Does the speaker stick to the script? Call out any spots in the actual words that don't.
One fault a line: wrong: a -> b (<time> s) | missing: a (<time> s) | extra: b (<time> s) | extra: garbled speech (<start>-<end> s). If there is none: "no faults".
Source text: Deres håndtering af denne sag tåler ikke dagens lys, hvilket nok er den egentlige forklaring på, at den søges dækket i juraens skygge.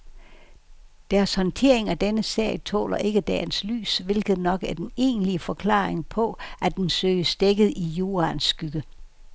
no faults